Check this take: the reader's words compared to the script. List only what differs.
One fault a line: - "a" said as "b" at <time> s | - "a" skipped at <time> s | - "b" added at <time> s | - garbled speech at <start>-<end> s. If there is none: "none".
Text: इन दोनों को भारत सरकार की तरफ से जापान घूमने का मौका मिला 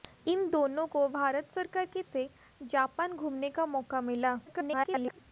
- "तरफ" skipped at 2.0 s
- garbled speech at 4.5-5.2 s